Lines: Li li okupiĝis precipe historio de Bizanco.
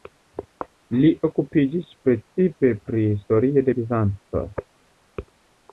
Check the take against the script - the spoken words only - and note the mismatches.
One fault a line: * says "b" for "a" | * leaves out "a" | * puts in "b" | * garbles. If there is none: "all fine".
* leaves out "li"
* puts in "pri"